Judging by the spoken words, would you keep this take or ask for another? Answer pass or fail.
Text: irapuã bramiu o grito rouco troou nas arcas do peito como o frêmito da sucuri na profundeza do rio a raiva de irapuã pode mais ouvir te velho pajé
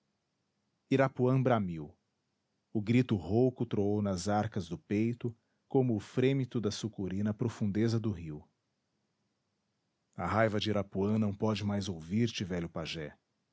fail